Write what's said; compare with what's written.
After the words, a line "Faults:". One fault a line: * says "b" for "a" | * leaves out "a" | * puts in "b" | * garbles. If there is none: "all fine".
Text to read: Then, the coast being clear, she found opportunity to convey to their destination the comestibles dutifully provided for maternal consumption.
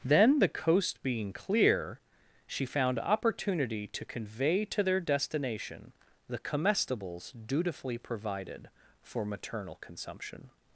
Then, the coast being clear, she found opportunity to convey to their destination the comestibles dutifully provided for maternal consumption.
Faults:
all fine